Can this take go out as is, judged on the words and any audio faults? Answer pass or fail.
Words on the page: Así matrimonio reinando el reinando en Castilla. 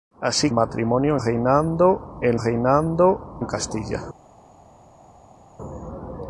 pass